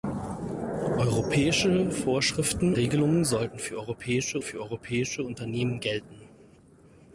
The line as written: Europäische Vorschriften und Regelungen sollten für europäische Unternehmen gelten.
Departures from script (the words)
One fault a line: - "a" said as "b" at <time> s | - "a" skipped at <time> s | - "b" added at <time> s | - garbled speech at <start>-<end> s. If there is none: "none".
- "und" skipped at 2.7 s
- "für europäische" added at 4.4 s